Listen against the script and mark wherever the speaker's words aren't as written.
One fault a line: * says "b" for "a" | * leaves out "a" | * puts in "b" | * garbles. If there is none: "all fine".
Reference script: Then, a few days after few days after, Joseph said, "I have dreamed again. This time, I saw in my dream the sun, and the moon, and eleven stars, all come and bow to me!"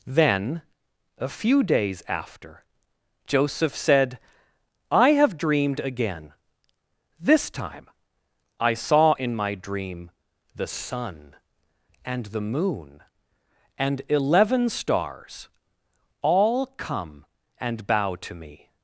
* leaves out "few days after"